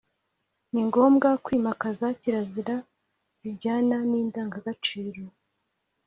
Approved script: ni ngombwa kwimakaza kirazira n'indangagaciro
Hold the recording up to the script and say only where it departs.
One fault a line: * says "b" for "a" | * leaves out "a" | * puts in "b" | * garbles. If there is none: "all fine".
* puts in "zijyana"